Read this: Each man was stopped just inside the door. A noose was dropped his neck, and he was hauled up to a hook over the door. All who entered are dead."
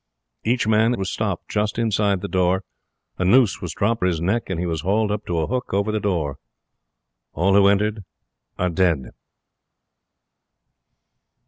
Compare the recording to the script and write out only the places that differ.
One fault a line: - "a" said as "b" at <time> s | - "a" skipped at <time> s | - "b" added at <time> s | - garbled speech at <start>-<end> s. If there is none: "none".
none